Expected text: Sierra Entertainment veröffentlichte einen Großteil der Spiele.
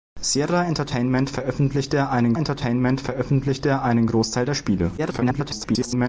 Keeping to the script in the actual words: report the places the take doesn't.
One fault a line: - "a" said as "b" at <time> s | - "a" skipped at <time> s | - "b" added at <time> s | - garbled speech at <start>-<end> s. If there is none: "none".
- "Entertainment veröffentlichte einen" added at 2.3 s
- garbled speech at 5.0-6.1 s